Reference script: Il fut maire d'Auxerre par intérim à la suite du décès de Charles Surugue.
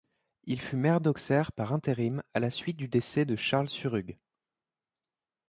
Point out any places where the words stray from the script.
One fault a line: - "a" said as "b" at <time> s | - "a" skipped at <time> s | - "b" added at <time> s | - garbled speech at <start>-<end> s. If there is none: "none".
none